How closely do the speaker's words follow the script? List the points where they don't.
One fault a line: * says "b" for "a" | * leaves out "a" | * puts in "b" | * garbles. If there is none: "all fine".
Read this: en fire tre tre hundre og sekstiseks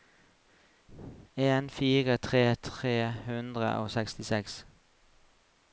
all fine